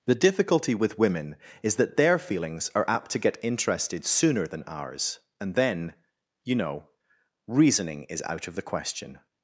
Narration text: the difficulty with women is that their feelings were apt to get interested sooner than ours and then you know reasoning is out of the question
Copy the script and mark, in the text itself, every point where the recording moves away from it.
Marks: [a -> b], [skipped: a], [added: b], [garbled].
the difficulty with women is that their feelings [were -> are] apt to get interested sooner than ours and then you know reasoning is out of the question